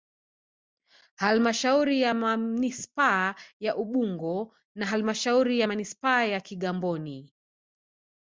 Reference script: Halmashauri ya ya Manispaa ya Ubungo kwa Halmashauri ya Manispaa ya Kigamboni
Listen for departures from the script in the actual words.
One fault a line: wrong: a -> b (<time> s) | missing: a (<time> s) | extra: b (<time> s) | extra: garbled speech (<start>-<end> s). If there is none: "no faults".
missing: ya (2.1 s)
wrong: kwa -> na (4.8 s)